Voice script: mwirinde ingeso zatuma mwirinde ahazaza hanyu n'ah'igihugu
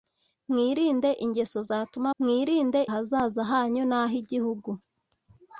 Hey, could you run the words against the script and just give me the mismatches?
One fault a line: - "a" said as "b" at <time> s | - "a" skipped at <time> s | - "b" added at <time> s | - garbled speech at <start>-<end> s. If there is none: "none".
none